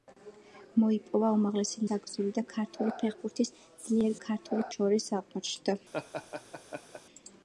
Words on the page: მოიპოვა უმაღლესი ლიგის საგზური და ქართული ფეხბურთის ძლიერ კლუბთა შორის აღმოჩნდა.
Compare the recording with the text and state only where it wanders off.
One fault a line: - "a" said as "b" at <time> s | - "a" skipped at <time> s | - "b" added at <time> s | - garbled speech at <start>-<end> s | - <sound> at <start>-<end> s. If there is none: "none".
- "ლიგის" skipped at 1.8 s
- "კლუბთა" said as "ქართული" at 4.3 s
- laugh at 5.9-7.0 s